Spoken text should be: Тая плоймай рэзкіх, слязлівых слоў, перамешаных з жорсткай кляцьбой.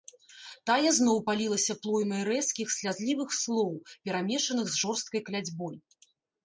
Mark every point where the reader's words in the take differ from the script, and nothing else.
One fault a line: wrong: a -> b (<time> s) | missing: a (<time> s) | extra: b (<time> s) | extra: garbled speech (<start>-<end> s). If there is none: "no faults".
extra: зноў палілася (1.0 s)